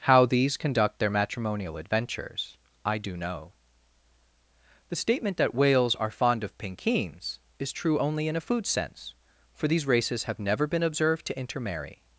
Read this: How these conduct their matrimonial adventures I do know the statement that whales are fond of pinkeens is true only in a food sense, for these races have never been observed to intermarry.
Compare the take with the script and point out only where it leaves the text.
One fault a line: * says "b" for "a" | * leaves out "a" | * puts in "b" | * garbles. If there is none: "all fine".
all fine